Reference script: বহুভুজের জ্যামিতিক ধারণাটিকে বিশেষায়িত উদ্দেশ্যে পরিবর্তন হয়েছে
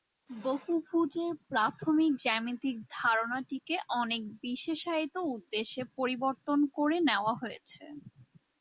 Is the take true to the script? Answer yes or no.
no